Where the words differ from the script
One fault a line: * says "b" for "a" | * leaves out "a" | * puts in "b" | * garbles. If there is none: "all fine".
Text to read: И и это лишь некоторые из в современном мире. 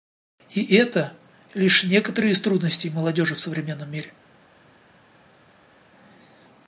* leaves out "и"
* puts in "трудностей молодежи"